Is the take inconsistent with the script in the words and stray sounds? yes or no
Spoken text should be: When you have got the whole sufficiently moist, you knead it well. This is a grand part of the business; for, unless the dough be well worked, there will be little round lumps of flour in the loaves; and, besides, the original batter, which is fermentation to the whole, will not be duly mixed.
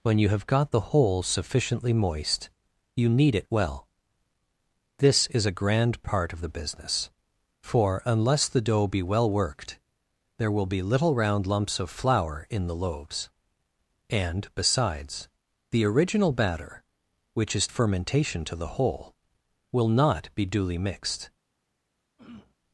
yes